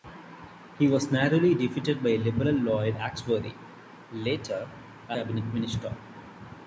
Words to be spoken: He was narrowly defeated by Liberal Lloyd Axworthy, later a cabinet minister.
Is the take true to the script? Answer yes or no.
yes